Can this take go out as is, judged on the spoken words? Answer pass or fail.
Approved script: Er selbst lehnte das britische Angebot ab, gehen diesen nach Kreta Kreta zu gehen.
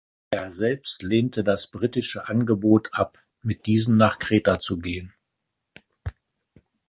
fail